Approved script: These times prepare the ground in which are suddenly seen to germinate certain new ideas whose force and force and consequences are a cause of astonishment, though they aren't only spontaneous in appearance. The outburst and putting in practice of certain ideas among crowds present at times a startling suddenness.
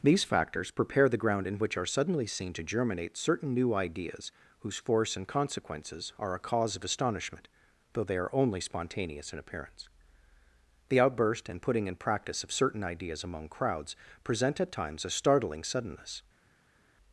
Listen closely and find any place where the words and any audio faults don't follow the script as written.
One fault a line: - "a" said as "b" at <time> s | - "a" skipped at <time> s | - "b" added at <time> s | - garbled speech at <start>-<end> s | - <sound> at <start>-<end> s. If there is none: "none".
- "times" said as "factors" at 0.2 s
- "force and" skipped at 5.3 s
- "aren't" said as "are" at 8.2 s